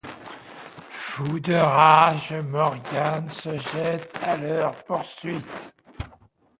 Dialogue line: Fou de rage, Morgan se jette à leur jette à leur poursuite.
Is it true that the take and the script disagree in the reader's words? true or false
true